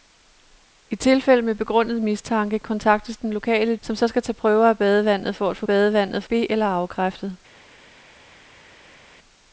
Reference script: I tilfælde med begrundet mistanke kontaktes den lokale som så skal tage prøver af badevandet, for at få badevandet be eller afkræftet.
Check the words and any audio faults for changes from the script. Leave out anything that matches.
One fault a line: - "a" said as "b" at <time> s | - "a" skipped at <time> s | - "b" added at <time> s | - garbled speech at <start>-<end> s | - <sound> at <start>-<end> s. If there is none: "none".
none